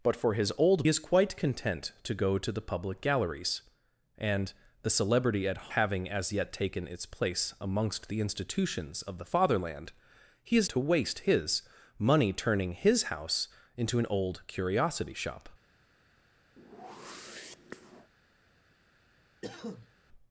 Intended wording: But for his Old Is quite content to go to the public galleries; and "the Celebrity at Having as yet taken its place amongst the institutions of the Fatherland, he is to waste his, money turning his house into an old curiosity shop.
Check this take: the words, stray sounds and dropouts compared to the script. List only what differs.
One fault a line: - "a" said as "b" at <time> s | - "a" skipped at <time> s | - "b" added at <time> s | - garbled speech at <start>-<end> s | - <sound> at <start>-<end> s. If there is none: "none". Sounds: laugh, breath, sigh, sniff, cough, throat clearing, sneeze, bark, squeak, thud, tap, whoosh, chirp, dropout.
- whoosh at 16.6-18.1 s
- cough at 19.4-19.9 s